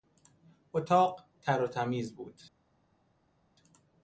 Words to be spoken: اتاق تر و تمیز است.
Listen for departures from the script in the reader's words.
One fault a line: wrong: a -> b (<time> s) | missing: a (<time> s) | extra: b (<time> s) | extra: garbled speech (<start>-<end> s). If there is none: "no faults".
wrong: است -> بود (2.1 s)